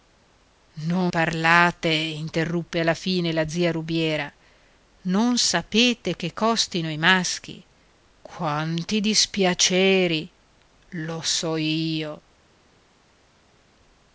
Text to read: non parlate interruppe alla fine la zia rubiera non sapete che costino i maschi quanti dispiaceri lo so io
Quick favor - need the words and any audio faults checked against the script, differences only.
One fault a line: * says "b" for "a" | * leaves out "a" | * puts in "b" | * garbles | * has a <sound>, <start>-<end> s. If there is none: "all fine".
all fine